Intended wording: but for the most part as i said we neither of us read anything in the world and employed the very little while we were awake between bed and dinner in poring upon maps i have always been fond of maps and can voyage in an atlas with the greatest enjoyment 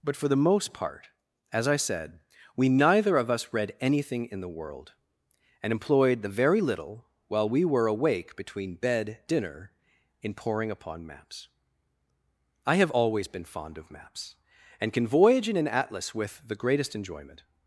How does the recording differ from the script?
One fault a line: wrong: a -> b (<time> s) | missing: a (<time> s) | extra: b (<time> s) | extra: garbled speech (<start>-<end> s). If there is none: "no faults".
missing: and (9.2 s)